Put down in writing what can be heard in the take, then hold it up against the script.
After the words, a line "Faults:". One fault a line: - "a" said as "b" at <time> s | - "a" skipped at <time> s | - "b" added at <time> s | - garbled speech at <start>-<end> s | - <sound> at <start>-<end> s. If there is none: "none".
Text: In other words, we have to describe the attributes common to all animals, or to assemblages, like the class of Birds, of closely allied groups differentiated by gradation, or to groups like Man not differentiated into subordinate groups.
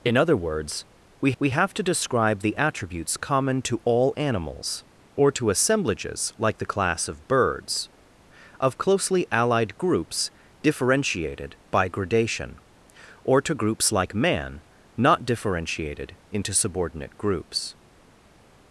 In other words, we we have to describe the attributes common to all animals, or to assemblages, like the class of Birds, of closely allied groups differentiated by gradation, or to groups like Man not differentiated into subordinate groups.
Faults:
- "we" added at 1.4 s